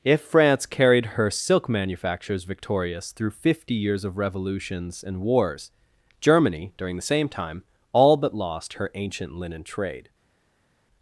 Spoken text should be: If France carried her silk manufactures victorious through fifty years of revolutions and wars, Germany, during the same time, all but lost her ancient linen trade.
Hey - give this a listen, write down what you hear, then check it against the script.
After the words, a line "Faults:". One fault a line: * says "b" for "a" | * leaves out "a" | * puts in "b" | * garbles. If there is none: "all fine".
If France carried her silk manufactures victorious through fifty years of revolutions and wars, Germany, during the same time, all but lost her ancient linen trade.
Faults:
all fine